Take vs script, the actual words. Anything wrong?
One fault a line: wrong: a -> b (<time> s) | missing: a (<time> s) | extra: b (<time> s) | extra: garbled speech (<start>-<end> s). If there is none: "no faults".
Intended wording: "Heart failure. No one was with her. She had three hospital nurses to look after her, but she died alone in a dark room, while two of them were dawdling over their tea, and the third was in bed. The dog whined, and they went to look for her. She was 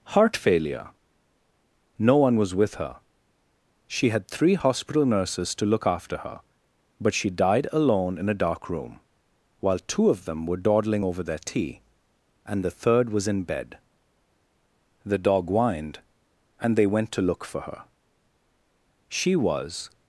no faults